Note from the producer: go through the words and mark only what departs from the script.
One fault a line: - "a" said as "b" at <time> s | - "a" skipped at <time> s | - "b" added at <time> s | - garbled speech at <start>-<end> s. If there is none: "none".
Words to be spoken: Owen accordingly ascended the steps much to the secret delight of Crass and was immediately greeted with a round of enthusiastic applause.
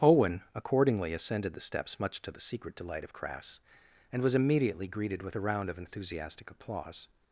none